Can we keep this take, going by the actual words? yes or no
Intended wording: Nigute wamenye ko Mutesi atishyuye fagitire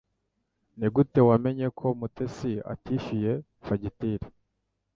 yes